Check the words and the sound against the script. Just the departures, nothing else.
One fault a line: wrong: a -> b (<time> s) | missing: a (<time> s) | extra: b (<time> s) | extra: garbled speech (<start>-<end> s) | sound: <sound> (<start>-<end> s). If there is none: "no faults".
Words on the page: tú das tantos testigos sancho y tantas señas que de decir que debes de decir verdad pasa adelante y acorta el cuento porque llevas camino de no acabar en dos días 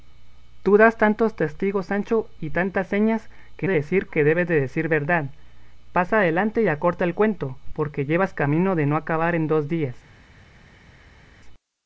no faults